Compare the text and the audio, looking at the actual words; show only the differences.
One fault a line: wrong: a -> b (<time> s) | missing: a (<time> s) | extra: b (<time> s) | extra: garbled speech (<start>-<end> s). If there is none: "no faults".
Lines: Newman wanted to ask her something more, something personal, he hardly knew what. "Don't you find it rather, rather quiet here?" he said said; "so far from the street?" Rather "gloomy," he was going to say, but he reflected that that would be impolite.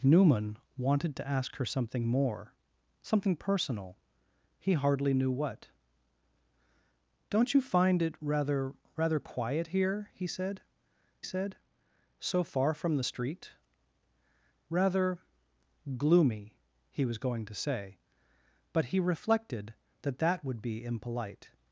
no faults